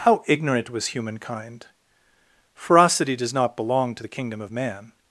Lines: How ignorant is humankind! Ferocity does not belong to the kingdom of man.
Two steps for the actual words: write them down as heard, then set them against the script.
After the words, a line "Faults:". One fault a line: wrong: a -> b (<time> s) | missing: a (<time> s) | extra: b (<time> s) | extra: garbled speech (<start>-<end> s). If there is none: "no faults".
How ignorant was humankind! Ferocity does not belong to the kingdom of man.
Faults:
wrong: is -> was (0.7 s)